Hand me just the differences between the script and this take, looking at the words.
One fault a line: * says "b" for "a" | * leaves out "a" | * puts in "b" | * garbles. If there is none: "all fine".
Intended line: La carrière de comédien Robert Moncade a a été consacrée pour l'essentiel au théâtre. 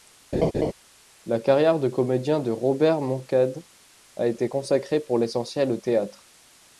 * puts in "de"
* leaves out "a"